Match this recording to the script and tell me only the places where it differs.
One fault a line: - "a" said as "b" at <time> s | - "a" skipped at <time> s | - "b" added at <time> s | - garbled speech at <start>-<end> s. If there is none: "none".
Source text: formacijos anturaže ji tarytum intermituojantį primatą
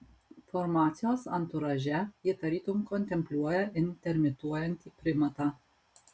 - "kontempliuoja" added at 2.9 s